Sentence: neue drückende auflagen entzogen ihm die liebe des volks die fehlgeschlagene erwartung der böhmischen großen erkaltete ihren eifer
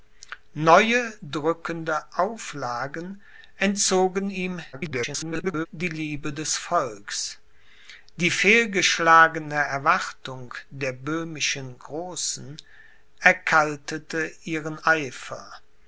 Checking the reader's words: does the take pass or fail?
fail